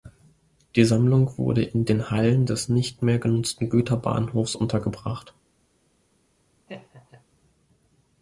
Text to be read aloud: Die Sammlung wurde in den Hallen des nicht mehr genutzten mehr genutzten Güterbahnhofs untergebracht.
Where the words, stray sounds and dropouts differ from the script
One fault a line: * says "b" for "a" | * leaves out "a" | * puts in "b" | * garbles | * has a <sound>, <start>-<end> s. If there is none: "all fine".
* leaves out "mehr genutzten"
* has a laugh, 6.7-7.2 s